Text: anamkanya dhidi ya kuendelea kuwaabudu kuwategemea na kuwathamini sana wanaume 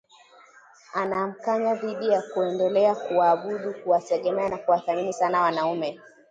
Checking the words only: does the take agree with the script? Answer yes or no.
yes